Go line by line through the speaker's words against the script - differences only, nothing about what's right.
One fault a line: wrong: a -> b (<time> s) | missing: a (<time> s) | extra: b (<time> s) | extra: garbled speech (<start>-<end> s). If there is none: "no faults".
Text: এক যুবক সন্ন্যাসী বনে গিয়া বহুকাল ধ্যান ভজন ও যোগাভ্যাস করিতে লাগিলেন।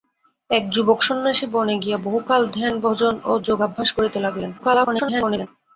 extra: garbled speech (4.6-5.5 s)